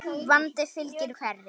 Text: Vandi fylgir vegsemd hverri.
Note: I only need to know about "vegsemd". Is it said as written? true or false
false